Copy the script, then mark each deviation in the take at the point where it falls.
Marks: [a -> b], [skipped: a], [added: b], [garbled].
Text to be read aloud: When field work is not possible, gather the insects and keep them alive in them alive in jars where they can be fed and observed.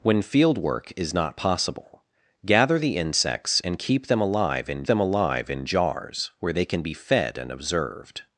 When field work is not possible, gather the insects and keep them alive in them alive in jars where they can be fed and observed.